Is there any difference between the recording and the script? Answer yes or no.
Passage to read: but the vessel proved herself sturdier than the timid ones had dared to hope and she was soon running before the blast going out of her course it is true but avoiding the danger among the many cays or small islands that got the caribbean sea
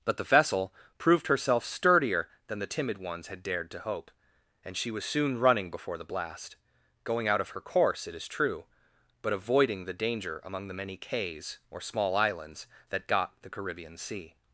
no